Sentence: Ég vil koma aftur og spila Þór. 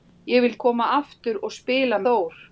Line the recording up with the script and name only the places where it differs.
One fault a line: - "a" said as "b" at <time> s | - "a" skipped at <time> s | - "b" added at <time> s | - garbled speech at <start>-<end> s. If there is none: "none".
none